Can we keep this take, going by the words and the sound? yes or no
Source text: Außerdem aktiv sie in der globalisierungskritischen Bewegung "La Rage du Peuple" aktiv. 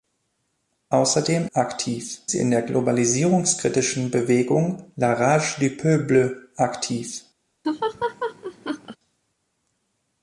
no